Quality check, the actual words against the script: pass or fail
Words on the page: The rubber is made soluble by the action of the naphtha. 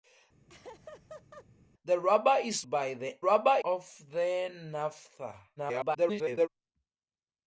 fail